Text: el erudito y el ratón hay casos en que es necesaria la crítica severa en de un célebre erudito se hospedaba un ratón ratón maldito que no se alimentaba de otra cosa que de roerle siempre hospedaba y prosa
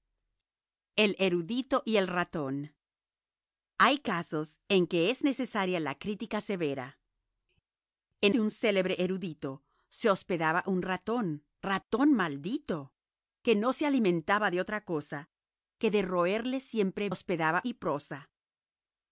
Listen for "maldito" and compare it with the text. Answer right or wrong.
right